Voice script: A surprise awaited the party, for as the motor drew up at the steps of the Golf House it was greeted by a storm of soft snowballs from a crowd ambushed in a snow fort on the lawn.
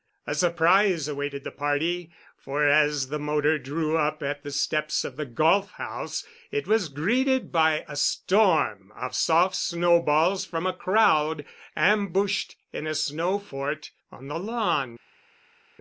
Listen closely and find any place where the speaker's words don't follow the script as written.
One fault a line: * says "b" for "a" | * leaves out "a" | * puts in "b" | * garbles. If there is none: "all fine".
all fine